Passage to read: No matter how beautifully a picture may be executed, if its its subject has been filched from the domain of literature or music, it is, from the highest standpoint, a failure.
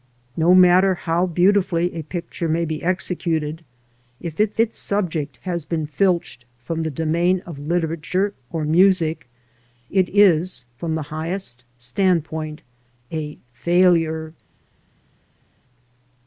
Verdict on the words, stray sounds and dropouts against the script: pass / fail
pass